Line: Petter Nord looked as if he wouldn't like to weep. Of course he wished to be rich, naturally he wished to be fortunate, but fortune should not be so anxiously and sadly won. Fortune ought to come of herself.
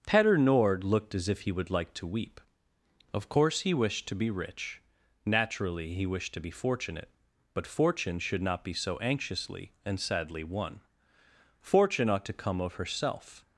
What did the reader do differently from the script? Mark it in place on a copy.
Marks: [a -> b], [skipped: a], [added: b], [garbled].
Petter Nord looked as if he [wouldn't -> would] like to weep. Of course he wished to be rich, naturally he wished to be fortunate, but fortune should not be so anxiously and sadly won. Fortune ought to come of herself.